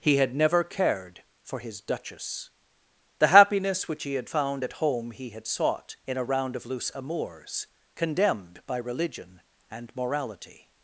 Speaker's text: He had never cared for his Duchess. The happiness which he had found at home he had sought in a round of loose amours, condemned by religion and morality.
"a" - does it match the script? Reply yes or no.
yes